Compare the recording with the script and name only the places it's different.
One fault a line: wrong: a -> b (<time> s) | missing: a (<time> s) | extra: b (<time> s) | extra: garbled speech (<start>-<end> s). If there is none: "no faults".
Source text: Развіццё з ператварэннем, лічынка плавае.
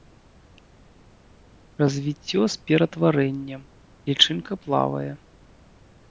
no faults